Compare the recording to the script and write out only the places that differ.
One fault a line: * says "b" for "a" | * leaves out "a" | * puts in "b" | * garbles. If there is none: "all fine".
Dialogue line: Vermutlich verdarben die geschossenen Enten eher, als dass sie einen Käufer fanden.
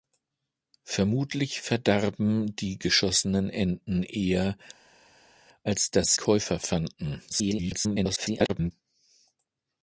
* leaves out "sie einen"
* garbles